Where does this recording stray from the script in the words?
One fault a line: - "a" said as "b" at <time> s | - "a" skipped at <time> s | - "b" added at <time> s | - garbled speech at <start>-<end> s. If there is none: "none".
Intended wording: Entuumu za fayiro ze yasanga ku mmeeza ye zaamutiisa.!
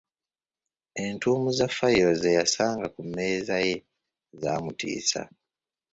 none